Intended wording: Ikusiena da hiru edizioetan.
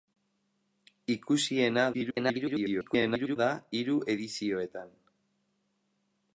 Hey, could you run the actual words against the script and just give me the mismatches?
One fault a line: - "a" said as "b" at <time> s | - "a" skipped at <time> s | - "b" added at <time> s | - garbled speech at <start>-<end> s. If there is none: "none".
- garbled speech at 1.9-3.4 s